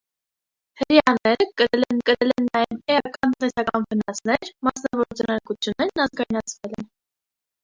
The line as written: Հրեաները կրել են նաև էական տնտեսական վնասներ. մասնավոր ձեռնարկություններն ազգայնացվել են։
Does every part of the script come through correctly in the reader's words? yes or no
no